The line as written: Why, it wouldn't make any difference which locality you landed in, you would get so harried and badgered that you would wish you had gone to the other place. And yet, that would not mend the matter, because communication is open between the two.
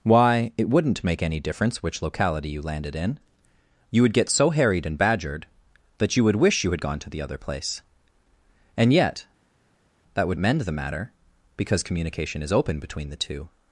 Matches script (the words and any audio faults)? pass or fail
fail